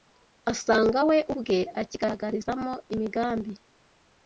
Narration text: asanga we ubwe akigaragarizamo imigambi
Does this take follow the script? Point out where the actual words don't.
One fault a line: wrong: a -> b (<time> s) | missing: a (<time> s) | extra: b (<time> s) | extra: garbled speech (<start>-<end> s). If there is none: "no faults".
no faults